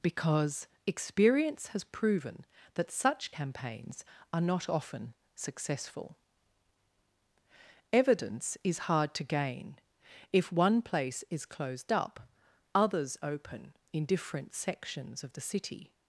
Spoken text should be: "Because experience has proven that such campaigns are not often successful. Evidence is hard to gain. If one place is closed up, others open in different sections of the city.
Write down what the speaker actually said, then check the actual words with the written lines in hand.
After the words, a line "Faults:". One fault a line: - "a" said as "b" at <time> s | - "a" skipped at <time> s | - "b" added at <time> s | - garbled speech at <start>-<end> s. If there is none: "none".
"Because experience has proven that such campaigns are not often successful. Evidence is hard to gain. If one place is closed up, others open in different sections of the city.
Faults:
none